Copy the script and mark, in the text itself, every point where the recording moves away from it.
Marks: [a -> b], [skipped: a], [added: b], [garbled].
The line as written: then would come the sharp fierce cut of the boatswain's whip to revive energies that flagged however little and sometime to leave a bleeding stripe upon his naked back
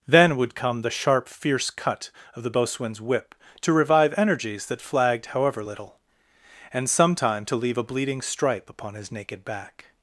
then would come the sharp fierce cut of the boatswain's whip to revive energies that flagged however little and sometime to leave a bleeding stripe upon his naked back